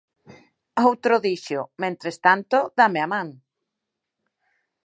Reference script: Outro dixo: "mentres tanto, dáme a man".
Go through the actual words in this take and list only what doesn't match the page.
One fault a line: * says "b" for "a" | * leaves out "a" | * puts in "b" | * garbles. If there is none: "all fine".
all fine